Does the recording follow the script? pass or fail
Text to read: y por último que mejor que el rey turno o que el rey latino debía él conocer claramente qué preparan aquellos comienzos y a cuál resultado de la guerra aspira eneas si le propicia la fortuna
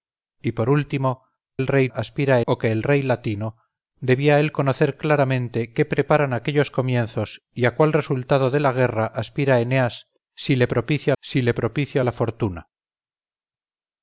fail